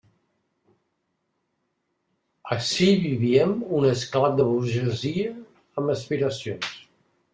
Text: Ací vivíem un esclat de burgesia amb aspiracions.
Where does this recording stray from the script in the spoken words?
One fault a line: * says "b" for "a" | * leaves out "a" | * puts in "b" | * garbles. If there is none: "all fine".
all fine